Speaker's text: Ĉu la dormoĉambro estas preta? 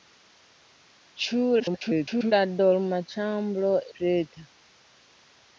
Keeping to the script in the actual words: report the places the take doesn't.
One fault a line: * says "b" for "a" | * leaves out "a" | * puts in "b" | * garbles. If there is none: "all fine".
* garbles
* leaves out "estas"